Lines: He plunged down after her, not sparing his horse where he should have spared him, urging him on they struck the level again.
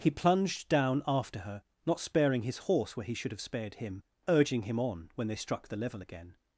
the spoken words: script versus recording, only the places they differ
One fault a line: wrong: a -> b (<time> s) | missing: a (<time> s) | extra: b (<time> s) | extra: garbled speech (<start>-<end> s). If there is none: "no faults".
extra: when (5.1 s)